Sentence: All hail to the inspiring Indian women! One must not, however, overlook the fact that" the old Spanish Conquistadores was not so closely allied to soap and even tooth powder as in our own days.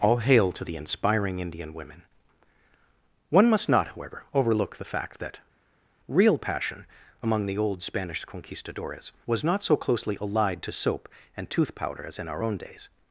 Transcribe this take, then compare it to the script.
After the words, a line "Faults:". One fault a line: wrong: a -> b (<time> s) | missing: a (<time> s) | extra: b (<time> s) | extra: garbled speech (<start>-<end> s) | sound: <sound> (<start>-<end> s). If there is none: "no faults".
All hail to the inspiring Indian women! One must not, however, overlook the fact that" real passion" among the old Spanish Conquistadores was not so closely allied to soap and tooth powder as in our own days.
Faults:
extra: real passion among (6.1 s)
missing: even (11.5 s)